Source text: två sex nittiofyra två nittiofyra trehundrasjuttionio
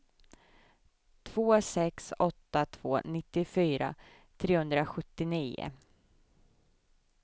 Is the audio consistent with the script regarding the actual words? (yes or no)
no